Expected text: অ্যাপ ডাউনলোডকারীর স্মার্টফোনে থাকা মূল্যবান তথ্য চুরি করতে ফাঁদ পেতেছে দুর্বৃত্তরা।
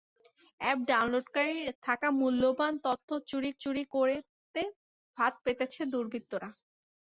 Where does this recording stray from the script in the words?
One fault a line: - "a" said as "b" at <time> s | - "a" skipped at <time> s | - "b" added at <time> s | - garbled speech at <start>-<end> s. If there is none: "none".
- "স্মার্টফোনে" skipped at 1.7 s
- "চুরি" added at 3.6 s